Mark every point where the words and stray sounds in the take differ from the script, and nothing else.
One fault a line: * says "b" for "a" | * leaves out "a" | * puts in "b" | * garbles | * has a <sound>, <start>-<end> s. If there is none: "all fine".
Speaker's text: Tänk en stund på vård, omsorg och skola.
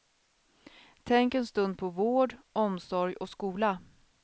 all fine